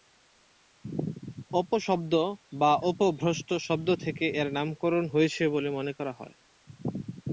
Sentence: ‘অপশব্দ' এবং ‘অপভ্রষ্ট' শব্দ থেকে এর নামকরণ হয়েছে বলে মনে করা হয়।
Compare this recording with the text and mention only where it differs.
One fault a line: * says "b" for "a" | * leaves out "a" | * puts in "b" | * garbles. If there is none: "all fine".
* says "বা" for "এবং"